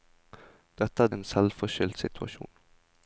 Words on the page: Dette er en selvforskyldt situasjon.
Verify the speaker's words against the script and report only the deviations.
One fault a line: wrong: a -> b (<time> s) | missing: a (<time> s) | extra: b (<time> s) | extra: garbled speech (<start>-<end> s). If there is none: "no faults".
no faults